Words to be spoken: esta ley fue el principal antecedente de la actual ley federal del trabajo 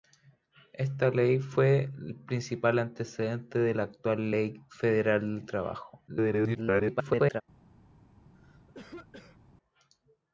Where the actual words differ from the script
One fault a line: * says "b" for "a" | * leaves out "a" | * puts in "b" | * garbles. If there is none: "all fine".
* garbles